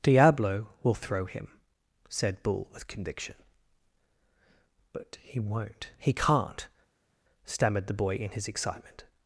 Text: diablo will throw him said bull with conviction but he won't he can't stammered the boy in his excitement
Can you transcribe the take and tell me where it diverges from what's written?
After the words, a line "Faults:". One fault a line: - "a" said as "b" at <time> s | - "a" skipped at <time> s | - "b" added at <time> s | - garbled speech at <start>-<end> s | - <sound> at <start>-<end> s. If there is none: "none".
diablo will throw him said bull with conviction but he won't he can't stammered the boy in his excitement
Faults:
none